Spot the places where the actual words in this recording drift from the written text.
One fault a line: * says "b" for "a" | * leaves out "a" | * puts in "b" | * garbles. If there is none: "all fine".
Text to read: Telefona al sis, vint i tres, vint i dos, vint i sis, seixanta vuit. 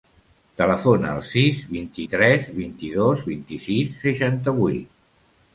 all fine